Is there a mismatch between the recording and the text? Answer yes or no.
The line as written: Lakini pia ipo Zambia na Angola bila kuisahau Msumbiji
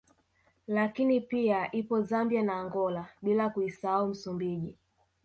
no